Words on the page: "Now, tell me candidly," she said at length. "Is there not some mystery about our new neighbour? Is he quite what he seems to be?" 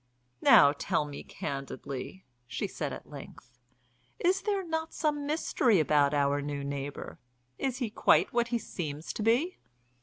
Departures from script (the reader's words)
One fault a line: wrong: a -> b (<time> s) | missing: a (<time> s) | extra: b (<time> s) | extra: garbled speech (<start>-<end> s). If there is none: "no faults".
no faults